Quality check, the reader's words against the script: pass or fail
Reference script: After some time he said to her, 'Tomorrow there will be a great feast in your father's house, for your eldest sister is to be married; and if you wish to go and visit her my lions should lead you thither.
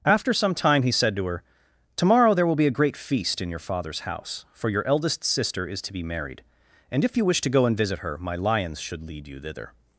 pass